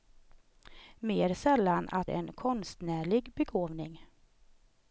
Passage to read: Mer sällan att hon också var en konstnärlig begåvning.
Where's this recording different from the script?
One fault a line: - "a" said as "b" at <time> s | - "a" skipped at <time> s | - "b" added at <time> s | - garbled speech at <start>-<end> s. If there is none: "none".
- "hon också var" skipped at 2.1 s